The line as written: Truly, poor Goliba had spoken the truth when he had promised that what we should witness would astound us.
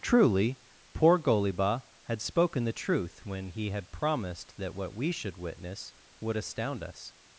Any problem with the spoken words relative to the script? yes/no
no